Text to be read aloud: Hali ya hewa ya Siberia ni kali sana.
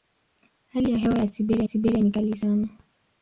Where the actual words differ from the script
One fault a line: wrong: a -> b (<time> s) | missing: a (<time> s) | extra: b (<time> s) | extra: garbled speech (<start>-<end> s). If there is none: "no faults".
extra: Siberia (1.6 s)